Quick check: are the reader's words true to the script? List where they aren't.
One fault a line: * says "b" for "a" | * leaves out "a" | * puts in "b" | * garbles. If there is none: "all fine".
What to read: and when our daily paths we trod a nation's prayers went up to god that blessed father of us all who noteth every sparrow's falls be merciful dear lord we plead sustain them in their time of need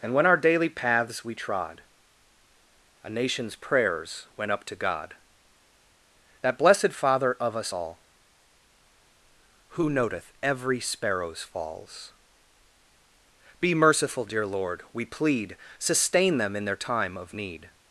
all fine